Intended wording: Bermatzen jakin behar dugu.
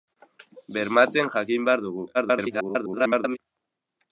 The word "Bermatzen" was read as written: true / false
true